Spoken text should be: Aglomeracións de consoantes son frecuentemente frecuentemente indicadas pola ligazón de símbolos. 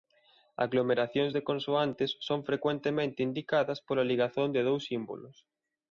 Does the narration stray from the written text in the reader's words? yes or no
yes